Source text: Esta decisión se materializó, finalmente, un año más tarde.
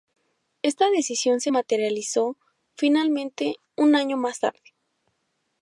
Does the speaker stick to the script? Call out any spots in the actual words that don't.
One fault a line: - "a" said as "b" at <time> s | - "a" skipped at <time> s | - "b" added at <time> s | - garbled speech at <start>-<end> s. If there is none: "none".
none